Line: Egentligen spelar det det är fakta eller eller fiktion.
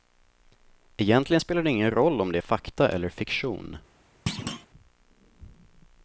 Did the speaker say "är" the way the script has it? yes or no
yes